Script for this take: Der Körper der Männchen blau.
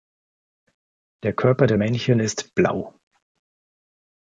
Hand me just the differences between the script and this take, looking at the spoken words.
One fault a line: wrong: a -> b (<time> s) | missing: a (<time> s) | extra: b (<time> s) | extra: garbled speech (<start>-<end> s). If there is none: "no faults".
extra: ist (2.2 s)